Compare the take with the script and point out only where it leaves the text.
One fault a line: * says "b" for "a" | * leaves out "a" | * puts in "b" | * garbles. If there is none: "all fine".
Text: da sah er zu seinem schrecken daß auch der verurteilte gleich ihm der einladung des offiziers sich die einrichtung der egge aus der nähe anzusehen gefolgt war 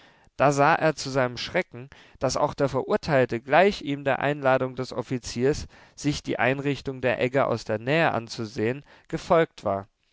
all fine